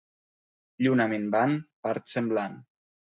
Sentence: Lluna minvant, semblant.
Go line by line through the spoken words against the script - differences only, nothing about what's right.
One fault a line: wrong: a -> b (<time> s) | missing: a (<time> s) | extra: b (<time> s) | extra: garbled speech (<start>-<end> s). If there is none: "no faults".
extra: part (1.9 s)